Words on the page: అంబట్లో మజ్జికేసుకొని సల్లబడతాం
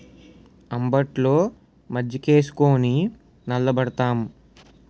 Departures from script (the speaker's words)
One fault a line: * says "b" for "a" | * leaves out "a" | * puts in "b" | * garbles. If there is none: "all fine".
all fine